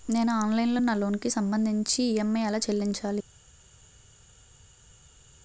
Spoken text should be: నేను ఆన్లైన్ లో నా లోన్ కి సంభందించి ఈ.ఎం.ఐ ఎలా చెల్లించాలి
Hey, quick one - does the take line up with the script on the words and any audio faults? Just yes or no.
yes